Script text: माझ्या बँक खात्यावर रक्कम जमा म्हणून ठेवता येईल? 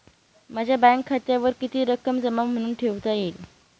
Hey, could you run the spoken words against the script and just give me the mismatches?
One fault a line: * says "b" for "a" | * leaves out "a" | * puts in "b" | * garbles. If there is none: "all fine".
* puts in "किती"